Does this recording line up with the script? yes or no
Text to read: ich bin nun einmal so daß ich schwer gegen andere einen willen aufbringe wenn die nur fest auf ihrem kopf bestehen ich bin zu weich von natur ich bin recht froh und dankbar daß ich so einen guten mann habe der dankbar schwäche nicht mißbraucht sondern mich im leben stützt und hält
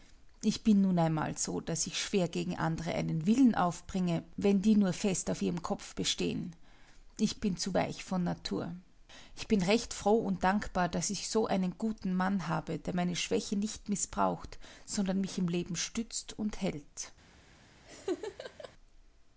no